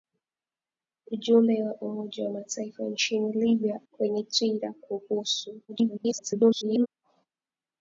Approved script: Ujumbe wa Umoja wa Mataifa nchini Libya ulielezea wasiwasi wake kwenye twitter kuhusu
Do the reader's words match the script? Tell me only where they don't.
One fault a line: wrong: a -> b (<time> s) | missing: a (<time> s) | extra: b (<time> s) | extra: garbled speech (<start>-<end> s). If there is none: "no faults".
missing: ulielezea wasiwasi wake (3.8 s)
extra: garbled speech (5.7-6.9 s)